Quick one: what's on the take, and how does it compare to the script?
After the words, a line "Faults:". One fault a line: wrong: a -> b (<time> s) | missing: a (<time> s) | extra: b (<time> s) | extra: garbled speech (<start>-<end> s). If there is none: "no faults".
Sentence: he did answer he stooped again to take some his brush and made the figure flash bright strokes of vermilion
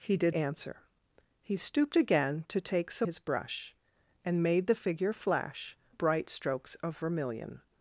he did answer he stooped again to take some his brush and made the figure flash bright strokes of vermilion
Faults:
no faults